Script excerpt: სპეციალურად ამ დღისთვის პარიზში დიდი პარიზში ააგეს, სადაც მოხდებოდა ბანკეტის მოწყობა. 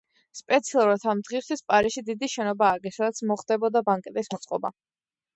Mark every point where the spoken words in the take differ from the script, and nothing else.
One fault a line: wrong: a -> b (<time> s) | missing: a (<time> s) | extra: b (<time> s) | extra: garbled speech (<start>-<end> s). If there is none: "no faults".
wrong: პარიზში -> შენობა (2.4 s)